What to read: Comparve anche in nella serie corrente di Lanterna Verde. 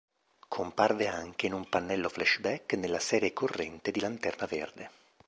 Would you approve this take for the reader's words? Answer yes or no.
no